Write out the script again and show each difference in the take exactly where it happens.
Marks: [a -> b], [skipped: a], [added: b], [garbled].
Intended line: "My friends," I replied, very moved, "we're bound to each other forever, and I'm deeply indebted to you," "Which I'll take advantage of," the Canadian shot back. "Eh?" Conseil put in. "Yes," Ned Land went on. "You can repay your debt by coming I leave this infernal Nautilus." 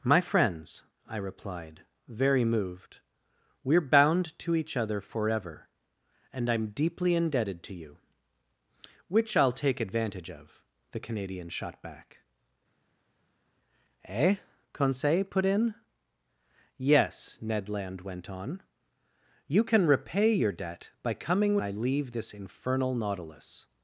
"My friends," I replied, very moved, "we're bound to each other forever, and I'm deeply indebted to you," "Which I'll take advantage of," the Canadian shot back. "Eh?" Conseil put in. "Yes," Ned Land went on. "You can repay your debt by coming I leave this infernal Nautilus."